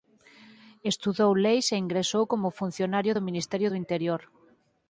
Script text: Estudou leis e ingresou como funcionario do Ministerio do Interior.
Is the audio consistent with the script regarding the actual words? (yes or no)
yes